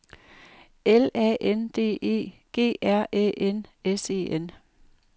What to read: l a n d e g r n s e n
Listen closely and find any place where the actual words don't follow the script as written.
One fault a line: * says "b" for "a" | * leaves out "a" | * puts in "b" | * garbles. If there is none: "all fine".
* puts in "æ"